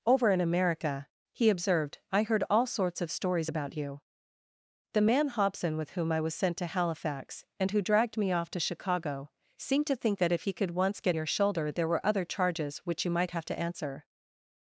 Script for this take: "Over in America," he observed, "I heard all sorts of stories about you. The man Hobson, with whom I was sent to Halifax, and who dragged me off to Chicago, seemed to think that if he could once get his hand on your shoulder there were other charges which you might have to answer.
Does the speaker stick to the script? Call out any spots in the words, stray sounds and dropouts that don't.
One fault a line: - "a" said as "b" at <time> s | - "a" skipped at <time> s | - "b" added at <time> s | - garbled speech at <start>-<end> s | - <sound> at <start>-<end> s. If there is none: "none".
- "his hand on" skipped at 11.2 s